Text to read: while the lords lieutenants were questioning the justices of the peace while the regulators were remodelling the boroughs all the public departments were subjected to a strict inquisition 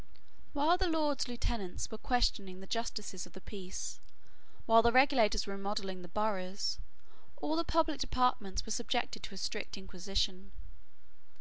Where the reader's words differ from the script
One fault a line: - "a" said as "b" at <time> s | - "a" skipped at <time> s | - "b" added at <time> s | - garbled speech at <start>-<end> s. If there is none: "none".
none